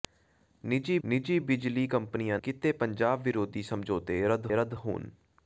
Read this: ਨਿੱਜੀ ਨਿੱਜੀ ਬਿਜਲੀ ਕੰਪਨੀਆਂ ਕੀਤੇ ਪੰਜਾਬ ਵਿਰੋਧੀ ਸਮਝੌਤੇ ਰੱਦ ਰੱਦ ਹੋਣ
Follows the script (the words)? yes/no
yes